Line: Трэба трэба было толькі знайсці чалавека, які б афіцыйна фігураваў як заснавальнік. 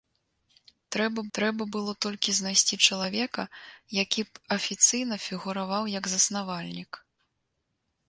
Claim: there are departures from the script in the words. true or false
false